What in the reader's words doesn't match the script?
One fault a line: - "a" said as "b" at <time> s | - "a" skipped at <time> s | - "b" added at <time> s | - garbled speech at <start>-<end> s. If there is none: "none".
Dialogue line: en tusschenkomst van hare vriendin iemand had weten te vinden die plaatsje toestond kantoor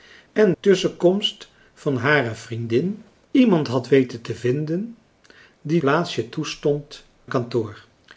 none